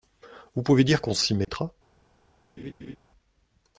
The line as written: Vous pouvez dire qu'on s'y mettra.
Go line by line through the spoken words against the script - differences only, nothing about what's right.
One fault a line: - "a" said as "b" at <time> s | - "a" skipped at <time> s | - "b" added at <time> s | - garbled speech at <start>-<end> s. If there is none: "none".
none